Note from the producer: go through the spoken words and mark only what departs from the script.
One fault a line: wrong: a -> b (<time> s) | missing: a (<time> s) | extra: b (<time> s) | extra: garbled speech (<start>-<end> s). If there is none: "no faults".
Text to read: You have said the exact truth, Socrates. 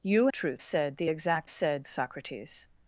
wrong: have -> truth (0.3 s)
wrong: truth -> said (1.5 s)